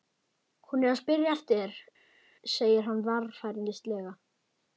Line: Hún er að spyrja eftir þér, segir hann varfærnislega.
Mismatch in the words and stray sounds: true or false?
false